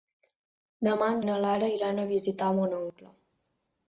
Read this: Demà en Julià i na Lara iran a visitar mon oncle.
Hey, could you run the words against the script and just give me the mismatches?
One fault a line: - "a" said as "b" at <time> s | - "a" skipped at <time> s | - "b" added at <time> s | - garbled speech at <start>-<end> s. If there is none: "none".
- "Julià" skipped at 1.2 s